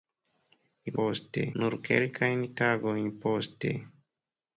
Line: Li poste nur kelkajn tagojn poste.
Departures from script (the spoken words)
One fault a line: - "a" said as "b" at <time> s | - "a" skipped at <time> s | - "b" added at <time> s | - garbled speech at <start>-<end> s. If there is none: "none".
none